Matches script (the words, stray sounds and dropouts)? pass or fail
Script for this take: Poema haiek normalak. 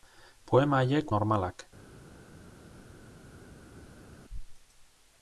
pass